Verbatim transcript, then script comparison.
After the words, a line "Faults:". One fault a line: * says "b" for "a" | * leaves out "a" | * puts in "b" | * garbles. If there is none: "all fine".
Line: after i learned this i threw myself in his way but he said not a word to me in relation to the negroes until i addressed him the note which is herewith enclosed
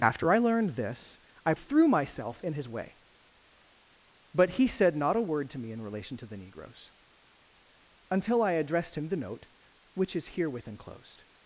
after i learned this i threw myself in his way but he said not a word to me in relation to the negroes until i addressed him the note which is herewith enclosed
Faults:
all fine